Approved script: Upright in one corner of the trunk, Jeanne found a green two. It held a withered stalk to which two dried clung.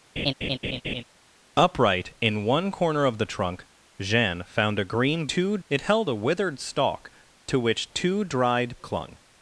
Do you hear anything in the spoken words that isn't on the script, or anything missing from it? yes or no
no